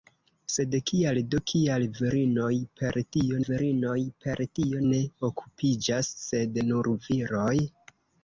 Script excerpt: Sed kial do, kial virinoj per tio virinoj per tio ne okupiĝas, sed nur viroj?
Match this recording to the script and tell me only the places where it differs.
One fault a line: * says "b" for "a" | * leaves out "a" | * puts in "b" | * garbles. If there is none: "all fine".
all fine